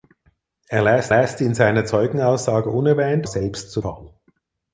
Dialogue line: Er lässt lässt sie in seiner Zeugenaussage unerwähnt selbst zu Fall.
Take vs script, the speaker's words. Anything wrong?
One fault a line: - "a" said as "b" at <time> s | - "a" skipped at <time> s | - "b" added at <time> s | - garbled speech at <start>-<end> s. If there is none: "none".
none